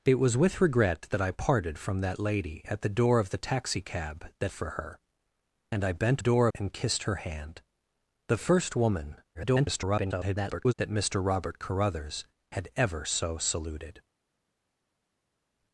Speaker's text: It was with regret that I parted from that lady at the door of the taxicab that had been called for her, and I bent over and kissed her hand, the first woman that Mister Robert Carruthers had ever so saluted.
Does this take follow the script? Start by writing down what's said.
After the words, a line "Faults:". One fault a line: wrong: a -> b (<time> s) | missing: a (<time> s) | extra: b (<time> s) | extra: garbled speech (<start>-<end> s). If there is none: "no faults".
It was with regret that I parted from that lady at the door of the taxicab that for her, and I bent door and kissed her hand, the first woman [garbled] that Mister Robert Carruthers had ever so saluted.
Faults:
missing: had been called (4.5 s)
wrong: over -> door (6.2 s)
extra: garbled speech (9.3-10.7 s)